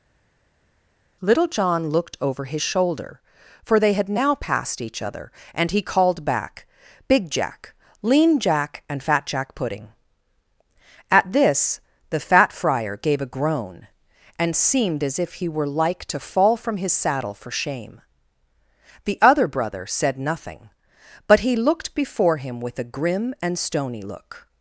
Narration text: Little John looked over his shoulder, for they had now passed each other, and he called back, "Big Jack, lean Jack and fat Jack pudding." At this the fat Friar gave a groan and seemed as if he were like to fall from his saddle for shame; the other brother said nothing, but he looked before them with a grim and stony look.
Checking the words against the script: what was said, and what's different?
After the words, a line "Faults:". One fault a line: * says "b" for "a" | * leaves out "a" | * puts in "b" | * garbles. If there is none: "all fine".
Little John looked over his shoulder, for they had now passed each other, and he called back, "Big Jack, lean Jack and fat Jack pudding." At this the fat Friar gave a groan and seemed as if he were like to fall from his saddle for shame; the other brother said nothing, but he looked before him with a grim and stony look.
Faults:
* says "him" for "them"